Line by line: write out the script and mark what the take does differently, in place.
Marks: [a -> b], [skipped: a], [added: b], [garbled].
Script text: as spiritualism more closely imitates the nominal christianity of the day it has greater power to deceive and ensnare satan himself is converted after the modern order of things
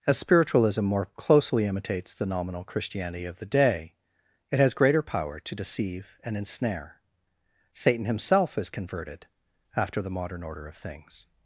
as spiritualism more closely imitates the nominal christianity of the day it has greater power to deceive and ensnare satan himself is converted after the modern order of things